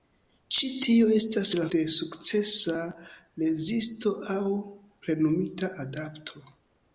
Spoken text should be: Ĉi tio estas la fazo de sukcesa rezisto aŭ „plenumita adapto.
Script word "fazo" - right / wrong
wrong